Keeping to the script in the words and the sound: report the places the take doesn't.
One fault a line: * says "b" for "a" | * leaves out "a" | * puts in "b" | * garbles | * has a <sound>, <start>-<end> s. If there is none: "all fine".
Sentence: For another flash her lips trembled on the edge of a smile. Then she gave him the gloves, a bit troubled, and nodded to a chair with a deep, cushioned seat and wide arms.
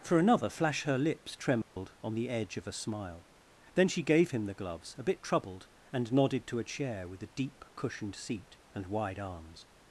* has a dropout, 1.6-1.8 s